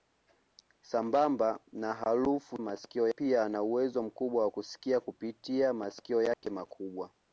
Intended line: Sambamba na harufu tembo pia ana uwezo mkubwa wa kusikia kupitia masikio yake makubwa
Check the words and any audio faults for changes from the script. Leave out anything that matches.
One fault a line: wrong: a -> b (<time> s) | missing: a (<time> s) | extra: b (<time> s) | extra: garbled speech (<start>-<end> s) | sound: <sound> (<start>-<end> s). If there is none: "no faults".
wrong: tembo -> masikio (2.6 s)
sound: dropout (6.3-6.4 s)